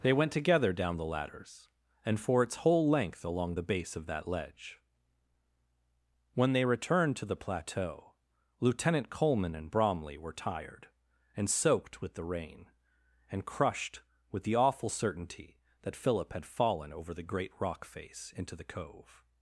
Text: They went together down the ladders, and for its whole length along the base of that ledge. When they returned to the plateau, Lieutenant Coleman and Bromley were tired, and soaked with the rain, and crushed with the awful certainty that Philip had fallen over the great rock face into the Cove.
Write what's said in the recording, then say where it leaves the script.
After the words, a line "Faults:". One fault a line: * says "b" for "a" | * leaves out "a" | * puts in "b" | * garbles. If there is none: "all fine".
They went together down the ladders, and for its whole length along the base of that ledge. When they returned to the plateau, Lieutenant Coleman and Bromley were tired, and soaked with the rain, and crushed with the awful certainty that Philip had fallen over the great rock face into the Cove.
Faults:
all fine